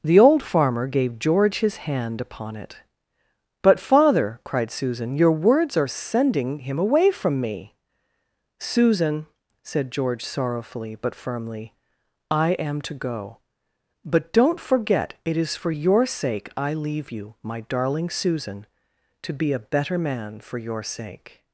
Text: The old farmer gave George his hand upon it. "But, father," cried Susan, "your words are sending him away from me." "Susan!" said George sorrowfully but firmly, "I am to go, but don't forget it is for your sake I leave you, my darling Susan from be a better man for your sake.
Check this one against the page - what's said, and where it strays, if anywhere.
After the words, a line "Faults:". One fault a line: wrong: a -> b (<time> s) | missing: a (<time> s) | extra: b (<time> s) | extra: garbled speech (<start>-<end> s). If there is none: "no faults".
The old farmer gave George his hand upon it. "But, father," cried Susan, "your words are sending him away from me." "Susan!" said George sorrowfully but firmly, "I am to go, but don't forget it is for your sake I leave you, my darling Susan to be a better man for your sake.
Faults:
wrong: from -> to (19.2 s)